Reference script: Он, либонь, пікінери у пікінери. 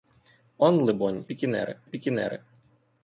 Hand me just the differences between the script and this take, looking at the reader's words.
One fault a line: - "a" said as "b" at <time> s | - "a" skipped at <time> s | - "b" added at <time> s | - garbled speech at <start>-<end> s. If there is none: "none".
none